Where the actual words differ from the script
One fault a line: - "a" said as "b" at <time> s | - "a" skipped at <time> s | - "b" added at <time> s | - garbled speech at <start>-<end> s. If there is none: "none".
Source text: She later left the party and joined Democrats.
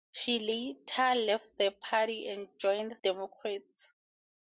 none